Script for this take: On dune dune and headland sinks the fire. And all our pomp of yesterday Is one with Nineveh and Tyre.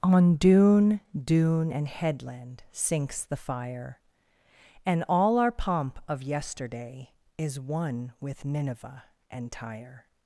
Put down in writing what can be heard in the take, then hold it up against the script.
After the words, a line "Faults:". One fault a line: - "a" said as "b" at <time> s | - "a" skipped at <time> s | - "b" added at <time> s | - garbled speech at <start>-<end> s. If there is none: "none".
On dune dune and headland sinks the fire. And all our pomp of yesterday Is one with Nineveh and Tyre.
Faults:
none